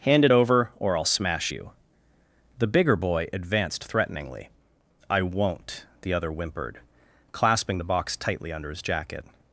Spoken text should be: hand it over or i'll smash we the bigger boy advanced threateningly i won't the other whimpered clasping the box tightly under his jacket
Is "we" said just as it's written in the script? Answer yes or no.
no